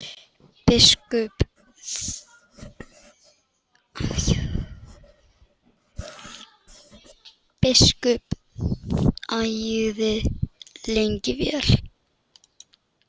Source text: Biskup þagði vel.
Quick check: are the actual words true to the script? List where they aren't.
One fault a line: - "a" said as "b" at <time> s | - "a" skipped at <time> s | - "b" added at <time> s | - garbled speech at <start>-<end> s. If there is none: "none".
- "lengi" added at 10.9 s